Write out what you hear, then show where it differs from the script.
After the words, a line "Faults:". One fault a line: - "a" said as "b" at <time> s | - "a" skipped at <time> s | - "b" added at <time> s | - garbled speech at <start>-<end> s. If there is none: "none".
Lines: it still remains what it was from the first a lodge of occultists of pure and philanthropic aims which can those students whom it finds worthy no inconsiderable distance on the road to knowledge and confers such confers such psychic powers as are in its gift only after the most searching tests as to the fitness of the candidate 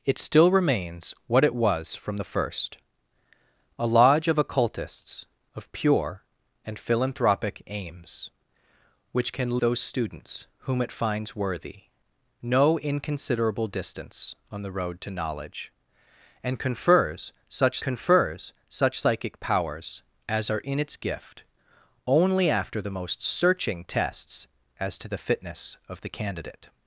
it still remains what it was from the first a lodge of occultists of pure and philanthropic aims which can those students whom it finds worthy no inconsiderable distance on the road to knowledge and confers such confers such psychic powers as are in its gift only after the most searching tests as to the fitness of the candidate
Faults:
none